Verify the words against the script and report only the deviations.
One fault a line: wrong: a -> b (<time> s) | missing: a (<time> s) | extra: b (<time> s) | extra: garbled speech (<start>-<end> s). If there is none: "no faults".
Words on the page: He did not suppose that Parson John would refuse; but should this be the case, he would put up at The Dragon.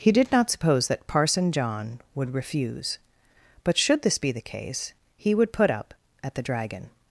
no faults